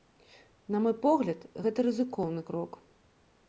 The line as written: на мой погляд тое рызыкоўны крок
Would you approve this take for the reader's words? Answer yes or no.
no